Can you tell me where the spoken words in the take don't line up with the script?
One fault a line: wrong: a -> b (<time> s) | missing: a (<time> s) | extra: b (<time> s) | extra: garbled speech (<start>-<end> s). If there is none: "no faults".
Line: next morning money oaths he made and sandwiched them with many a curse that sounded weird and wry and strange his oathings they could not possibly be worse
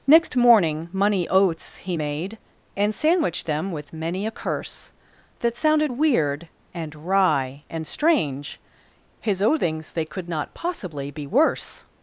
no faults